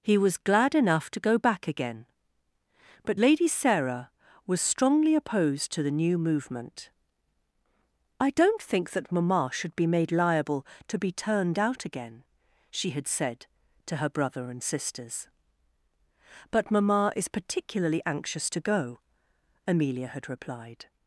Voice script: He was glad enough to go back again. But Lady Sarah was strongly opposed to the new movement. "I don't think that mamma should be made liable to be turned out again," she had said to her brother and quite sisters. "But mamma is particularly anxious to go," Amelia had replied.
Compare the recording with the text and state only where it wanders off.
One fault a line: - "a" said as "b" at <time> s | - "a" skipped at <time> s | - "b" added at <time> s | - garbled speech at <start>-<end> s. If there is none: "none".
- "quite" skipped at 14.6 s